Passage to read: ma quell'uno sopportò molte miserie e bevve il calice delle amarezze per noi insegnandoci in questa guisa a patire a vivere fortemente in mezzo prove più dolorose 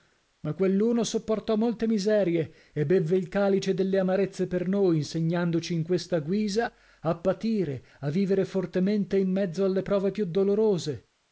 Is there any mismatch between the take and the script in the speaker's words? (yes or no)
yes